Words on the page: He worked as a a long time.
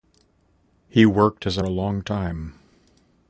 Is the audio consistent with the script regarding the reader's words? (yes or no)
yes